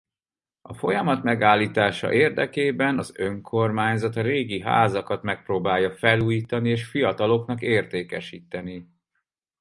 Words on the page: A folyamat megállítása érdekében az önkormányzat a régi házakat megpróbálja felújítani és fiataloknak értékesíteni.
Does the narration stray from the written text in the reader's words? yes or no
no